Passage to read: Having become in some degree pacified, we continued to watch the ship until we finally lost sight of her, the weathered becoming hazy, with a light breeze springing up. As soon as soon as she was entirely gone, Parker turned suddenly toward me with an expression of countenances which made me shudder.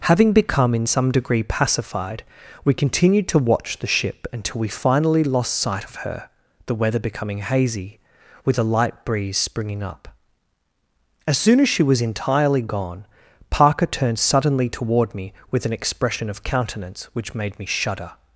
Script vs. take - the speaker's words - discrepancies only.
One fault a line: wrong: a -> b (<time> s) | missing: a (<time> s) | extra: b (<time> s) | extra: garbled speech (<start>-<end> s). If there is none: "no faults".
wrong: weathered -> weather (6.7 s)
missing: soon as (11.7 s)
wrong: countenances -> countenance (16.4 s)